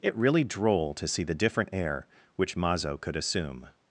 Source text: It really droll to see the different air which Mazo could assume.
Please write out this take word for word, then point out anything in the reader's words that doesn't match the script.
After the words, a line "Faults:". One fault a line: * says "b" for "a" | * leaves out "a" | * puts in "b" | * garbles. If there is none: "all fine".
It really droll to see the different air which Mazo could assume.
Faults:
all fine